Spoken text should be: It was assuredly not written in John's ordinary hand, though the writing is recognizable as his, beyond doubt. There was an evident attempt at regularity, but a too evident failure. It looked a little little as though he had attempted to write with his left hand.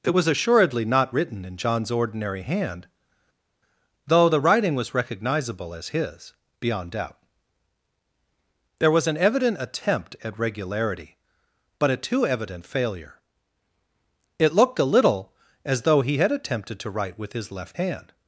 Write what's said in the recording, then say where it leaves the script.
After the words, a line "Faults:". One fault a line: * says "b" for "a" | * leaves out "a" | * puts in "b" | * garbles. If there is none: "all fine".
It was assuredly not written in John's ordinary hand, though the writing was recognizable as his, beyond doubt. There was an evident attempt at regularity, but a too evident failure. It looked a little as though he had attempted to write with his left hand.
Faults:
* says "was" for "is"
* leaves out "little"